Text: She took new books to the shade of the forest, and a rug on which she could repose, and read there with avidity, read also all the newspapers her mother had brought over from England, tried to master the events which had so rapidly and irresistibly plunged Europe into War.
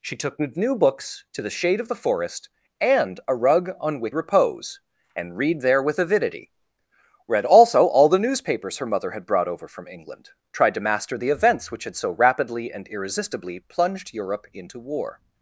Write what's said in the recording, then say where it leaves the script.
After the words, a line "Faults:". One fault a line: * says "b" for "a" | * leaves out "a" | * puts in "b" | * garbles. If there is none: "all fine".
She took new books to the shade of the forest, and a rug on which repose, and read there with avidity, read also all the newspapers her mother had brought over from England, tried to master the events which had so rapidly and irresistibly plunged Europe into War.
Faults:
* leaves out "she could"